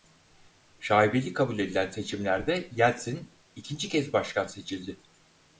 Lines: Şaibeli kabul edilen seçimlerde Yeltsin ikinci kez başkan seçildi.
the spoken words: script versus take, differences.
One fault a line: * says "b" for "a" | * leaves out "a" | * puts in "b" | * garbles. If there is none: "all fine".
all fine